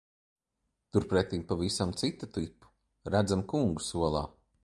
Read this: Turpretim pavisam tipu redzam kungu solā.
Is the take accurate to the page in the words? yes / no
no